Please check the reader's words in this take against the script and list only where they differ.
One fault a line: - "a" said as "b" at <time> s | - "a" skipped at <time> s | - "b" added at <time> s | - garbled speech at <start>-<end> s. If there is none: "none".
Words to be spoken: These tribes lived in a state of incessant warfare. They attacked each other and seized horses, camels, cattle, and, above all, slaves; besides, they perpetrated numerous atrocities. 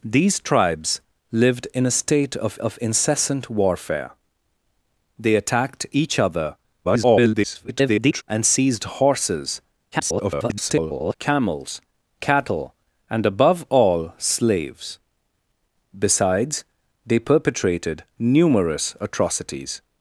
- "of" added at 2.6 s
- garbled speech at 6.8-8.2 s
- garbled speech at 9.9-11.1 s